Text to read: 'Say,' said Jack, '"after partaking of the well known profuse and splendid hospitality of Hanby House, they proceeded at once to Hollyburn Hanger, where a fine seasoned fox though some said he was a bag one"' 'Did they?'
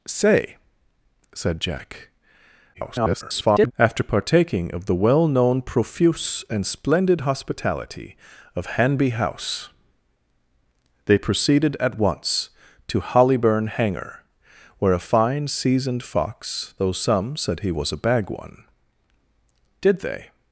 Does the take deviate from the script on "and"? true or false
false